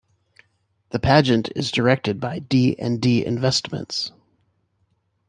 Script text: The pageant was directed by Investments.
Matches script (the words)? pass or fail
fail